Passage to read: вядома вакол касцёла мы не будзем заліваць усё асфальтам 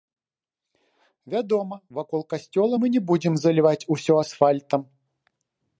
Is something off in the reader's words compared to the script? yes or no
no